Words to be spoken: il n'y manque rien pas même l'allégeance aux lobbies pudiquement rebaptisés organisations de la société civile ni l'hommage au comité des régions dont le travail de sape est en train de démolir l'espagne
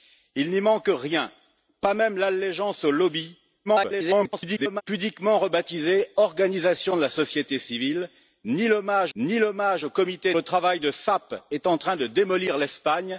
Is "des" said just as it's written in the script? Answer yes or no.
no